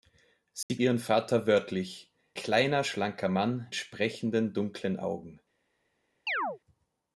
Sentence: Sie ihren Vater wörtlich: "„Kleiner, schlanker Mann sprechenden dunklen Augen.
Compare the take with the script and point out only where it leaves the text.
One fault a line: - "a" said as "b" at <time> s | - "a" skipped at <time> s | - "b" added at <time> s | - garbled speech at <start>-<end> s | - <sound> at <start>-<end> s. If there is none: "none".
- dropout at 0.6-0.7 s
- chirp at 6.3-6.6 s